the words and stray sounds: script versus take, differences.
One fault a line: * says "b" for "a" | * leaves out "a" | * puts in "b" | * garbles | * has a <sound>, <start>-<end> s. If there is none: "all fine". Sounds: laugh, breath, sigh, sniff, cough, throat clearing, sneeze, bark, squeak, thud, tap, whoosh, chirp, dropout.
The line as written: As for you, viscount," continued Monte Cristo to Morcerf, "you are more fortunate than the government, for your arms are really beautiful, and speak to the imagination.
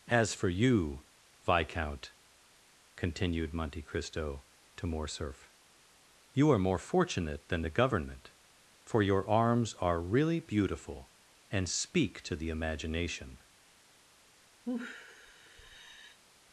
* has a sigh, 14.6-16.2 s